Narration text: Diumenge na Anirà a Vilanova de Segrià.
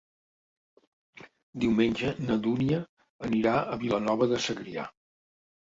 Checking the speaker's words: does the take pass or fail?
fail